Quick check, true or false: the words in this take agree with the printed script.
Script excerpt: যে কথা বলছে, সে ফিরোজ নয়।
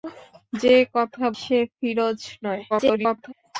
false